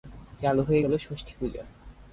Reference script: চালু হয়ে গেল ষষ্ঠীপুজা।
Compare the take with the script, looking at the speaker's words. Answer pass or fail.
pass